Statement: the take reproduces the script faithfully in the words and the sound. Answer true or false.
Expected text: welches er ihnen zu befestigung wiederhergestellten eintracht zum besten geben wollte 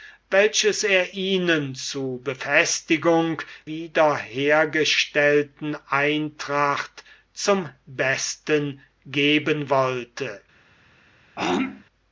false